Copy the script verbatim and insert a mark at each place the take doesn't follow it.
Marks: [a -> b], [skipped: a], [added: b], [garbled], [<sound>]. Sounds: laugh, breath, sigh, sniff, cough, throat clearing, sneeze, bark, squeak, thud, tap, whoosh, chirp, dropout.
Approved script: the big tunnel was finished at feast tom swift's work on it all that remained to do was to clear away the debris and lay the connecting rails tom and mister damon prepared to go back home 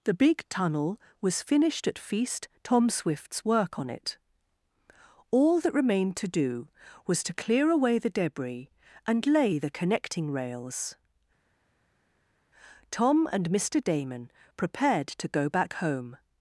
the big tunnel was finished at feast tom swift's work on it all that remained to do was to clear away the debris and lay the connecting rails tom and mister damon prepared to go back home